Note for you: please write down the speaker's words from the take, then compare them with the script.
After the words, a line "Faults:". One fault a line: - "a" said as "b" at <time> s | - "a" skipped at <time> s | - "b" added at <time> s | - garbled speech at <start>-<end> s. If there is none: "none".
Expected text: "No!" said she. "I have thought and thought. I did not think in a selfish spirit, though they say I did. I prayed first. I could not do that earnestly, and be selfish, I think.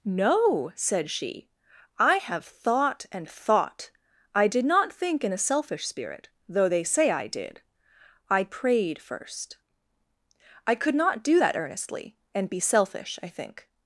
"No!" said she. "I have thought and thought. I did not think in a selfish spirit, though they say I did. I prayed first. I could not do that earnestly, and be selfish, I think.
Faults:
none